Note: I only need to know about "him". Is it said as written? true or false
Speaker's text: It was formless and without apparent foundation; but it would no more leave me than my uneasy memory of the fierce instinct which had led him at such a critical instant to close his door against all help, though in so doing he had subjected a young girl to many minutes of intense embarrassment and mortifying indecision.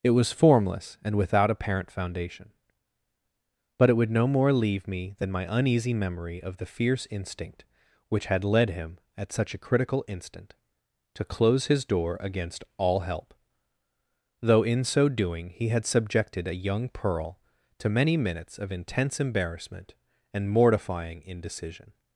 true